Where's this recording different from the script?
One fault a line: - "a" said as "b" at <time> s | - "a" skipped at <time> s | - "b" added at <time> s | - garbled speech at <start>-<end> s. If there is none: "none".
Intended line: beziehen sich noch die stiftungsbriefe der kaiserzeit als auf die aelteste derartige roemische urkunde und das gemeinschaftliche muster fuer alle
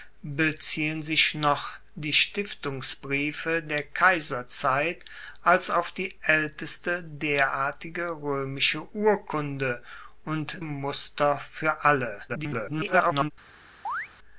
- "das gemeinschaftliche" skipped at 10.6 s
- garbled speech at 12.3-13.3 s